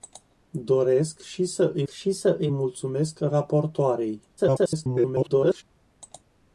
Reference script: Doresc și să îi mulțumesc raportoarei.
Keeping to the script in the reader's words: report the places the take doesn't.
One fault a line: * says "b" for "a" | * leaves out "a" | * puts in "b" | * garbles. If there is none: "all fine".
* puts in "și să îi"
* garbles